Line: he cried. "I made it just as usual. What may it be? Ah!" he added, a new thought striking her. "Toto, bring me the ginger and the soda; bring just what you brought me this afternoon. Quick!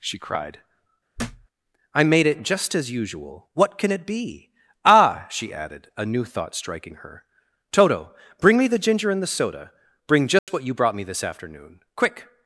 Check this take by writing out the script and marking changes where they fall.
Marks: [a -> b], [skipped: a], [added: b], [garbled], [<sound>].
[he -> she] cried. [thud] "I made it just as usual. What [may -> can] it be? Ah!" [he -> she] added, a new thought striking her. "Toto, bring me the ginger and the soda; bring just [dropout] what you brought me this afternoon. Quick!